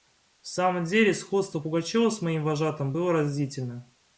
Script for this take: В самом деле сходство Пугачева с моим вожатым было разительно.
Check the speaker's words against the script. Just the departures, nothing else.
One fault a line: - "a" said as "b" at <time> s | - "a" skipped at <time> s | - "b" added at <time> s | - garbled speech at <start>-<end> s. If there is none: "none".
none